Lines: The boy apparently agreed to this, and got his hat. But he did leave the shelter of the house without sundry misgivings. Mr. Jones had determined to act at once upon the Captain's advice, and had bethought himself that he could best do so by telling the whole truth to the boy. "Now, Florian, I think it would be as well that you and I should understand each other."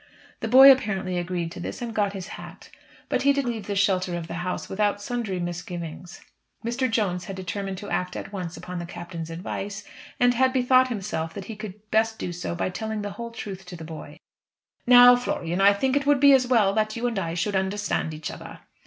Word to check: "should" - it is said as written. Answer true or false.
true